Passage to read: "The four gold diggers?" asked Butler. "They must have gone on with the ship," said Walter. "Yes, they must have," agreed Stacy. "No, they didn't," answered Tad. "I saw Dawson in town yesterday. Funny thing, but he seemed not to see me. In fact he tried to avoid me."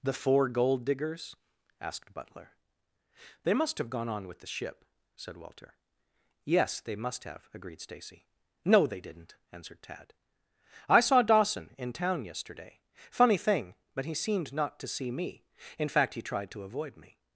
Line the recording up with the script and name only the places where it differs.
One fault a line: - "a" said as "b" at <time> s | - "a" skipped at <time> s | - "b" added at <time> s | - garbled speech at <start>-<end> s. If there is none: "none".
none